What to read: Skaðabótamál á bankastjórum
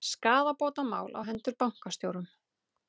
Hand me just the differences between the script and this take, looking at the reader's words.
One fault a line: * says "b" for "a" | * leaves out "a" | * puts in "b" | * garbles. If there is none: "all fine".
* puts in "hendur"